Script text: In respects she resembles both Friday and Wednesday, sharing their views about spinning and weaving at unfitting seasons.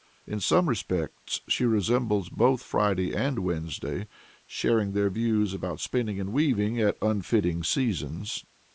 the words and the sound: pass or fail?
fail